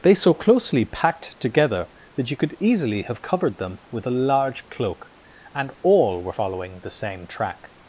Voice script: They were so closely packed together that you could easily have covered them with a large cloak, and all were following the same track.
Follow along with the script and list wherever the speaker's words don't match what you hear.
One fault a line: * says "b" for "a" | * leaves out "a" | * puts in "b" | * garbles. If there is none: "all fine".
* leaves out "were"